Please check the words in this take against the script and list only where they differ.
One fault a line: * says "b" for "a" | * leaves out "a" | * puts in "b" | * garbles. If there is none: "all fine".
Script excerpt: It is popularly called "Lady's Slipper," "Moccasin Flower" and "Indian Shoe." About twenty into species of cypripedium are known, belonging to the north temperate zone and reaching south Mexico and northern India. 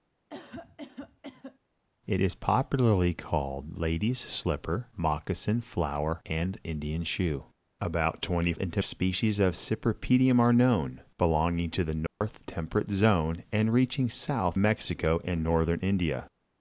all fine